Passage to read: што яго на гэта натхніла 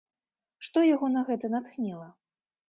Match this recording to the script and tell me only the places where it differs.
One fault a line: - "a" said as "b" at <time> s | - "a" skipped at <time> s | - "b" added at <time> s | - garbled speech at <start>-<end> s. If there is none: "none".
none